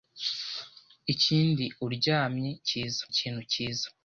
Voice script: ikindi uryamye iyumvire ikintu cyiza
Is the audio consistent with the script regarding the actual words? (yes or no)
no